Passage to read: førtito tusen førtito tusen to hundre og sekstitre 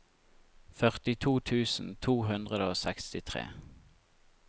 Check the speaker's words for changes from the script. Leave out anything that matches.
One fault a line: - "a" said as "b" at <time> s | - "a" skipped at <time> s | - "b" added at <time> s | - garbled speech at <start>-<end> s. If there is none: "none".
- "førtito tusen" skipped at 1.9 s